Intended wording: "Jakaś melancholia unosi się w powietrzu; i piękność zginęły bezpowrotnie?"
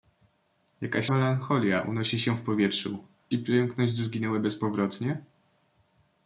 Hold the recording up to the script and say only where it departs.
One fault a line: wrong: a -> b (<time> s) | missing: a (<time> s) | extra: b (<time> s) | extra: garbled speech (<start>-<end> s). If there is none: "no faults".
no faults